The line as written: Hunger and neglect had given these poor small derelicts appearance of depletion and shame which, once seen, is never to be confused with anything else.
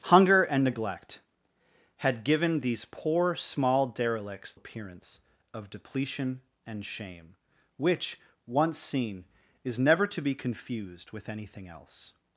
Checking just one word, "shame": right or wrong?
right